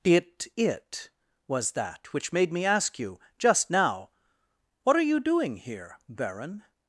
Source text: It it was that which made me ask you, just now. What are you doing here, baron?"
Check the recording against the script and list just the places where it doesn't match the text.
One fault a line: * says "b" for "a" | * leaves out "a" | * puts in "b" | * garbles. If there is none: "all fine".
all fine